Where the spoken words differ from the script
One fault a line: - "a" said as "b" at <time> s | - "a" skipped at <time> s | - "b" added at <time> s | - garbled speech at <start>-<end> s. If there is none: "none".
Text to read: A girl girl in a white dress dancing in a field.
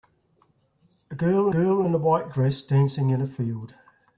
none